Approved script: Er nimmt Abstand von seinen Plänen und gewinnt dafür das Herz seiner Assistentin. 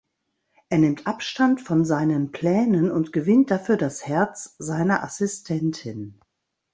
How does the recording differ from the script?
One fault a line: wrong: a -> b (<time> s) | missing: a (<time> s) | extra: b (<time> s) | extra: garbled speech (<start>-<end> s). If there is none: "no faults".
no faults